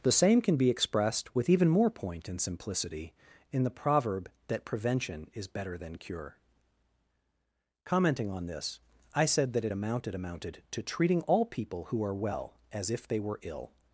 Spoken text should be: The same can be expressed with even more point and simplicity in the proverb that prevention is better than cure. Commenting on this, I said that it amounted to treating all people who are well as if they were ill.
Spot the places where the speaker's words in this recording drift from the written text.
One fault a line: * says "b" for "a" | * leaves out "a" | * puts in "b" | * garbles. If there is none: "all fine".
* puts in "amounted"